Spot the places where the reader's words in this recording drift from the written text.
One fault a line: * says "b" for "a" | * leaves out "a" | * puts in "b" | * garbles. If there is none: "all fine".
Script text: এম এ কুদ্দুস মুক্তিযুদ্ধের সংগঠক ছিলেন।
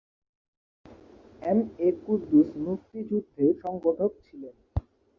all fine